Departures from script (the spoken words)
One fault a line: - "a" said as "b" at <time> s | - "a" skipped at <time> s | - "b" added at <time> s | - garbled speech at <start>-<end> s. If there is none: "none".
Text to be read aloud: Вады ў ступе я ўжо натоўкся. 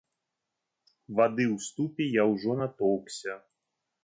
none